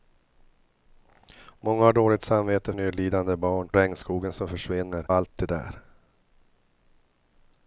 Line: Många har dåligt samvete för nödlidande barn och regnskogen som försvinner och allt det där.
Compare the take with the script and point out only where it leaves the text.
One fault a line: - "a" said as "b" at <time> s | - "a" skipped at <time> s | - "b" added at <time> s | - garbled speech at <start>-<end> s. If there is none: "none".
- "för" skipped at 2.7 s
- "och" skipped at 3.7 s
- "och" skipped at 5.1 s